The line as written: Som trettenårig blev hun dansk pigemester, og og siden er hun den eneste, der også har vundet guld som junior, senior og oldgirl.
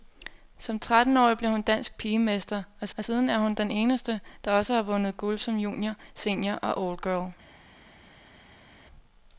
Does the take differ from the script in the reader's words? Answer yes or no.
no